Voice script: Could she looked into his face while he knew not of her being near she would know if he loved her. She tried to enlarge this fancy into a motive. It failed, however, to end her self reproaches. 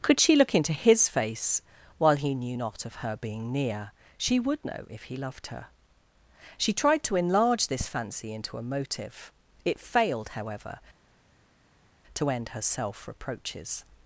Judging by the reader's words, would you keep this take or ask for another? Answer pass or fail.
fail